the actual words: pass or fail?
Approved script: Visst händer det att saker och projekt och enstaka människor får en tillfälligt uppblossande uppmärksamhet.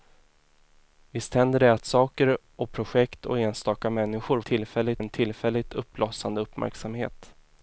fail